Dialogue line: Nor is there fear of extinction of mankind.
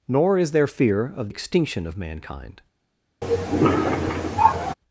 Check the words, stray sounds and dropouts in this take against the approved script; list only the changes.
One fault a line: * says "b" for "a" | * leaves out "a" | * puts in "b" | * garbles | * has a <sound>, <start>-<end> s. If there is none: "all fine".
* has a cough, 3.2-4.7 s